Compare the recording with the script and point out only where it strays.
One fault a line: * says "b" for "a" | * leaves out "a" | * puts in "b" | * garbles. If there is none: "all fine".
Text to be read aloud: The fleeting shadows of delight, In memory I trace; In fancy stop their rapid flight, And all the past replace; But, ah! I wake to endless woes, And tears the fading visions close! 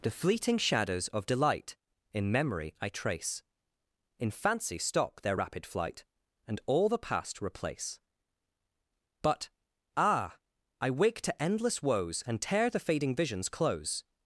* says "tear" for "tears"